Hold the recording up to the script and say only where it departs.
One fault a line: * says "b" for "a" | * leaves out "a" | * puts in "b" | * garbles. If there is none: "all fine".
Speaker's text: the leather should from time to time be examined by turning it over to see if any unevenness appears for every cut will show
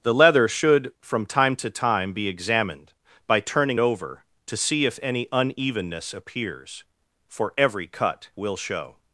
* leaves out "it"